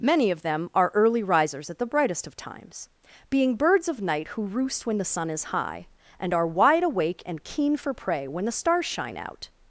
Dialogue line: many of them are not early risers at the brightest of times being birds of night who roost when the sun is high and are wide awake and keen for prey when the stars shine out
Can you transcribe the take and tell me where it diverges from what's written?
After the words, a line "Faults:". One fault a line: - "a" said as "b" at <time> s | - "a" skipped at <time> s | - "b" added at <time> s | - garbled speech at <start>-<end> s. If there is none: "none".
many of them are early risers at the brightest of times being birds of night who roost when the sun is high and are wide awake and keen for prey when the stars shine out
Faults:
- "not" skipped at 0.9 s